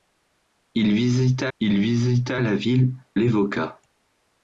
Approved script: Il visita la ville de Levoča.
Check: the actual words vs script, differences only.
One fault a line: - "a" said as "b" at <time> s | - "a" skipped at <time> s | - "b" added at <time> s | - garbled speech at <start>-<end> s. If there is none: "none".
- "il visita" added at 1.6 s
- "de" skipped at 2.9 s